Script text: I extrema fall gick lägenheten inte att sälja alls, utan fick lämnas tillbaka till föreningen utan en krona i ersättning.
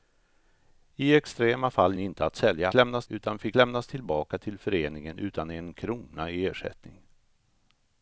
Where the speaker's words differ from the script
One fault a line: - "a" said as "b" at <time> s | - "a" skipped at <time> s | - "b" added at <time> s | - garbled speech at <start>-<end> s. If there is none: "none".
- "gick lägenheten" skipped at 1.9 s
- "alls" said as "lämnas" at 2.7 s